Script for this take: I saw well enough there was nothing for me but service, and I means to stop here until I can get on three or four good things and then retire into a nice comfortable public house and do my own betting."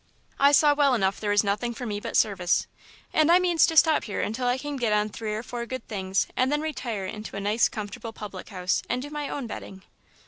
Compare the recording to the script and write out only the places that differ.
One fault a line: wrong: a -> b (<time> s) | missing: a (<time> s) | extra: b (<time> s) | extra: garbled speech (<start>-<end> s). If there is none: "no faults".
no faults